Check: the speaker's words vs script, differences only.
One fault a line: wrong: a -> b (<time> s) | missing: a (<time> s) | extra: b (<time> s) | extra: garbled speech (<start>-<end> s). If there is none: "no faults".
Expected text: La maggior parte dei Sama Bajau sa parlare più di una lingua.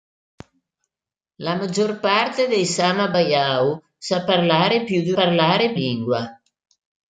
wrong: una -> parlare (5.1 s)